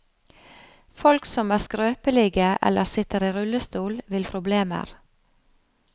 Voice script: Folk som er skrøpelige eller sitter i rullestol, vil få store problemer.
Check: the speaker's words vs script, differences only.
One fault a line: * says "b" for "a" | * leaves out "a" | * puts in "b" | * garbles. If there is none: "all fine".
* leaves out "få store"